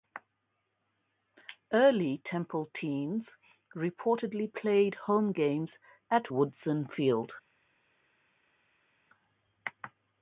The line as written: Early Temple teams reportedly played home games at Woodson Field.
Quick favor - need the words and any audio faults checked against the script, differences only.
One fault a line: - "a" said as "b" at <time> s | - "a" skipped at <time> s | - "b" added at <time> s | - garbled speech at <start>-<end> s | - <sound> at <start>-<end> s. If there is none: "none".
none